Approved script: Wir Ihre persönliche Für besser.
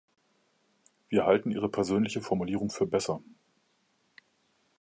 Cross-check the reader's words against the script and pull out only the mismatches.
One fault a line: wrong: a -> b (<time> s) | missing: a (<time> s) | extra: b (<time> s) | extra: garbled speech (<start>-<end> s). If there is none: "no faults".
extra: halten (1.3 s)
extra: Formulierung (2.2 s)